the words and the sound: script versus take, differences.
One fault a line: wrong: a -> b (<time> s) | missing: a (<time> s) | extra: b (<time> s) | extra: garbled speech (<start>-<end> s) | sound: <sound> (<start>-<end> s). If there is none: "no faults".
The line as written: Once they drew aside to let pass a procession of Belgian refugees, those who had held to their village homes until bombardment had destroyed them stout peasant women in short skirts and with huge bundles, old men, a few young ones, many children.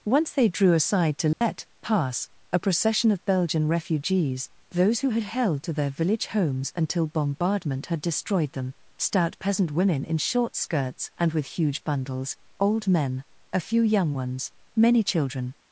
sound: dropout (1.3-1.4 s)